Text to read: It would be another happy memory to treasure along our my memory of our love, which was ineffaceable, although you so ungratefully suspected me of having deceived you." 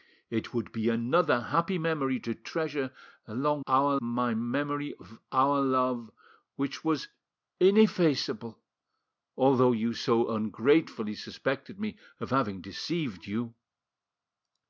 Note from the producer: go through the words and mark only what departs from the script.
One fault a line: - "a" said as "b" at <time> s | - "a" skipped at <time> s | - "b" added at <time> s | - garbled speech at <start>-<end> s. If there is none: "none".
none